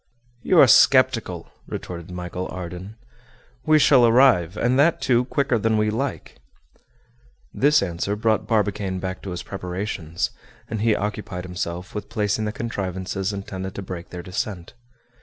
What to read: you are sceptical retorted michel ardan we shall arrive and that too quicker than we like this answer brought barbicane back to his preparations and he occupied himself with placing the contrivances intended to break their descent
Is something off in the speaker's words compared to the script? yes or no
no